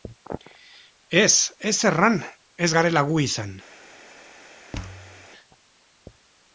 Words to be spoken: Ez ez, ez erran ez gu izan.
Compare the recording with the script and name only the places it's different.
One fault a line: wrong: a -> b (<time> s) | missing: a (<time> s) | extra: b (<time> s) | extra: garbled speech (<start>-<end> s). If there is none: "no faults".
missing: ez (1.8 s)
extra: garela (2.8 s)